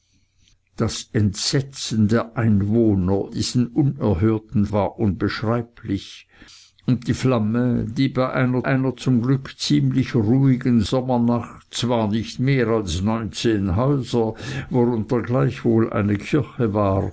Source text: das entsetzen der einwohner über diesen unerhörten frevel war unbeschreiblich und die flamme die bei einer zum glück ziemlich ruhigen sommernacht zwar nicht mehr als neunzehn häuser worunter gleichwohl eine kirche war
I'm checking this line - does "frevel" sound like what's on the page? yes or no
no